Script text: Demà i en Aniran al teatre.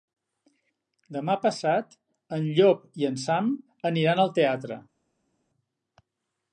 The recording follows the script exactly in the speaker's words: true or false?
false